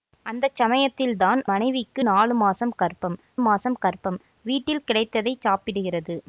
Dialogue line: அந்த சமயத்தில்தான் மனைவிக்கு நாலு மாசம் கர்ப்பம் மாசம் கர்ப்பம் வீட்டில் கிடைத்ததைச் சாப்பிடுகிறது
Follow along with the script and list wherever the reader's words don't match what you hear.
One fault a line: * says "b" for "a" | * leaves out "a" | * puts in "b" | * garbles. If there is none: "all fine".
all fine